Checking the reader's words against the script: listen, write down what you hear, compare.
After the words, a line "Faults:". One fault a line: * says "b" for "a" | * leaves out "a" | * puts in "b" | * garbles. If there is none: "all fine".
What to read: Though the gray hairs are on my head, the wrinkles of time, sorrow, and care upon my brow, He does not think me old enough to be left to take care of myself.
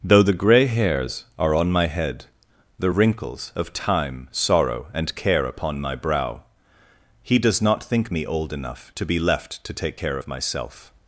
Though the gray hairs are on my head, the wrinkles of time, sorrow, and care upon my brow, He does not think me old enough to be left to take care of myself.
Faults:
all fine